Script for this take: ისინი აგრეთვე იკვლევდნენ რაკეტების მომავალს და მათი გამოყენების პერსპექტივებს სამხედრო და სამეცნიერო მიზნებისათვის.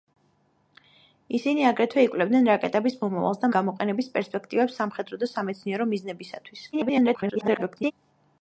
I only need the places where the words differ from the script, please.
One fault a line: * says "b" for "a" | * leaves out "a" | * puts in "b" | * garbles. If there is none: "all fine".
* leaves out "მათი"
* garbles